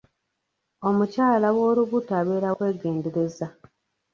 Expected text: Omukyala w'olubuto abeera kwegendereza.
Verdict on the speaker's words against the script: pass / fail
pass